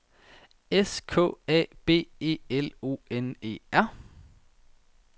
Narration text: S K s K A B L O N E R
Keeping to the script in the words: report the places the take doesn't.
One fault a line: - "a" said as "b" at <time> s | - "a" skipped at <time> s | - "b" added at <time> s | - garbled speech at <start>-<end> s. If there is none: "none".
- "s K" skipped at 1.3 s
- "E" added at 2.2 s